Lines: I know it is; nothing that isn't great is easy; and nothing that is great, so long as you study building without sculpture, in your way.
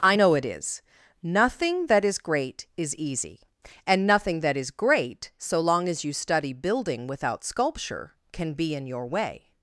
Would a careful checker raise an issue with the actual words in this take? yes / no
yes